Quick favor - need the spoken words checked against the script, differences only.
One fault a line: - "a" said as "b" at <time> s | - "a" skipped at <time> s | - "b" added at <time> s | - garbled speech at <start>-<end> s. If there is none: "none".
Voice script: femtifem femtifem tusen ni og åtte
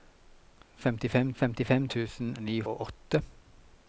none